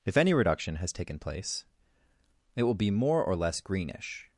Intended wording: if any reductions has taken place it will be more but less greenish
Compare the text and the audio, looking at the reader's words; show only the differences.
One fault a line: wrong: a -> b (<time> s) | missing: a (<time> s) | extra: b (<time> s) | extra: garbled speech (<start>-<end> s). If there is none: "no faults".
wrong: reductions -> reduction (0.3 s)
wrong: but -> or (3.2 s)